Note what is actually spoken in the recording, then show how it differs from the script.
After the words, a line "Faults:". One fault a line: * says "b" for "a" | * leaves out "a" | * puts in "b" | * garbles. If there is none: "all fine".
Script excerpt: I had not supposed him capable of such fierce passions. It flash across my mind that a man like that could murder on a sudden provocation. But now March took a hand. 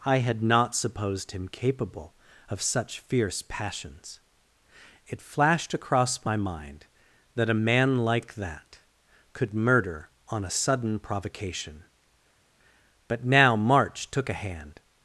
I had not supposed him capable of such fierce passions. It flashed across my mind that a man like that could murder on a sudden provocation. But now March took a hand.
Faults:
* says "flashed" for "flash"